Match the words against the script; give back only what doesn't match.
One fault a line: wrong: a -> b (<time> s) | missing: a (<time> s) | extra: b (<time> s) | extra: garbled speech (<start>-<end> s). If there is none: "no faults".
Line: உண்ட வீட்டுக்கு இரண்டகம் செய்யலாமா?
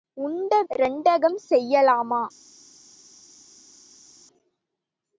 missing: வீட்டுக்கு (0.6 s)